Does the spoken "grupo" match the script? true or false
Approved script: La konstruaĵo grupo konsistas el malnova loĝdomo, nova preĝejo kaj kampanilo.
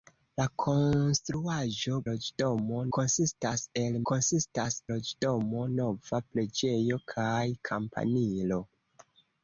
false